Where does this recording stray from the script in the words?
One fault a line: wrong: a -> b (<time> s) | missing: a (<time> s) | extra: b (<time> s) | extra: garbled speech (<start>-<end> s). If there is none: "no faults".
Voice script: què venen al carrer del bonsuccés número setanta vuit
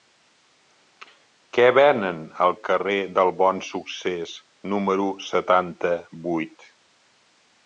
no faults